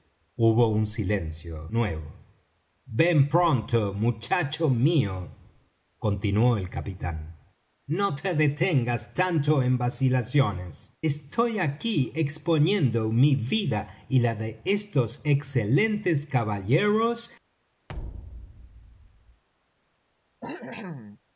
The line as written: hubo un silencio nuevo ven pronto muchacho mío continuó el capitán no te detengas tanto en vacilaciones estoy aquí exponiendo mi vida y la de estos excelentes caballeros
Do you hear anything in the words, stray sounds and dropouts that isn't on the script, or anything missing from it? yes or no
yes